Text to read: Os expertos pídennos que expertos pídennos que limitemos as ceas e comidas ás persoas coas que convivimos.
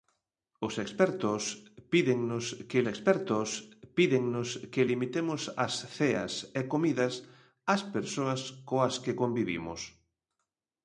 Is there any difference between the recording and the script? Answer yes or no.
no